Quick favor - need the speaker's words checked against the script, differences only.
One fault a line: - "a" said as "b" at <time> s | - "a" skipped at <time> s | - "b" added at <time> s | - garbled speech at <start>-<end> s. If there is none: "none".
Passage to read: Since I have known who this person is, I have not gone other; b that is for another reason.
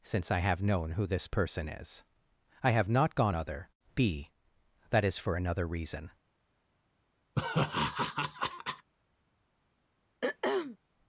none